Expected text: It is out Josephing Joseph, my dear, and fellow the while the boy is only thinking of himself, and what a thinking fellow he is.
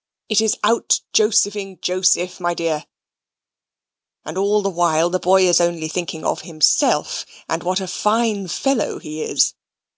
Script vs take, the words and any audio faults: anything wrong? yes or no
yes